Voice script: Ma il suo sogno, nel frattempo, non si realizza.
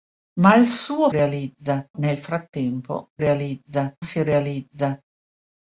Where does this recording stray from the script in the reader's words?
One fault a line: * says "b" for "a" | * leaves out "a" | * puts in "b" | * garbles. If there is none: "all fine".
* says "realizza" for "sogno"
* says "realizza" for "non"